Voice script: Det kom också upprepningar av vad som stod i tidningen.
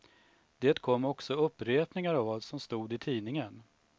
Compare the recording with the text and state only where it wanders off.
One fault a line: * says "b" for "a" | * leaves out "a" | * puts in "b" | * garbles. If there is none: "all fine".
all fine